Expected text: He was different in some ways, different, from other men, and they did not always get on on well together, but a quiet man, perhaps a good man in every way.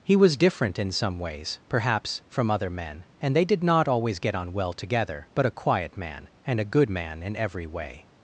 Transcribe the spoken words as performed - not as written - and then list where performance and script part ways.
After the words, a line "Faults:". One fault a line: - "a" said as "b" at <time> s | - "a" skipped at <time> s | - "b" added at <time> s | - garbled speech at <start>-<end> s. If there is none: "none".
He was different in some ways, perhaps, from other men, and they did not always get on well together, but a quiet man, and a good man in every way.
Faults:
- "different" said as "perhaps" at 1.7 s
- "on" skipped at 4.5 s
- "perhaps" said as "and" at 6.5 s